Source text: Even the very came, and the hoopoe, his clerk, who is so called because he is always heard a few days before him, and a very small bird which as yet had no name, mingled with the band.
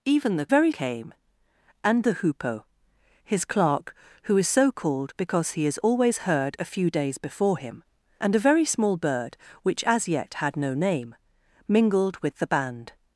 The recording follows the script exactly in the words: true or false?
true